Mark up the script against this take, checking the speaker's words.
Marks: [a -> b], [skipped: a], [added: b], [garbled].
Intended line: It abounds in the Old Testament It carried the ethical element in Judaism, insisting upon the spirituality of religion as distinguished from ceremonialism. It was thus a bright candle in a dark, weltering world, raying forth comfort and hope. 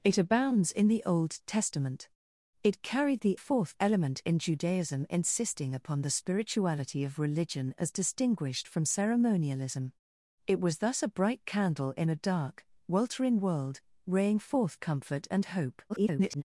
It abounds in the Old Testament It carried the [ethical -> forth] element in Judaism, insisting upon the spirituality of religion as distinguished from ceremonialism. It was thus a bright candle in a dark, weltering world, raying forth comfort and hope. [garbled]